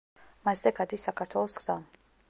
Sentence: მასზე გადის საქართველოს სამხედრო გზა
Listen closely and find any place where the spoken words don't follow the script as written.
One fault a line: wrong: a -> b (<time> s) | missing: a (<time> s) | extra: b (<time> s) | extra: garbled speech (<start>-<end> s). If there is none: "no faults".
missing: სამხედრო (1.6 s)